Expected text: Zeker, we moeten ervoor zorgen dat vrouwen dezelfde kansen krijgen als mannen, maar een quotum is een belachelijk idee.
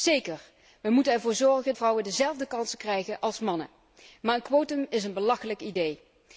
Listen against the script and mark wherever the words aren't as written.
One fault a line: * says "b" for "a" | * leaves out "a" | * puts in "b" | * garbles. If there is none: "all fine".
* leaves out "dat"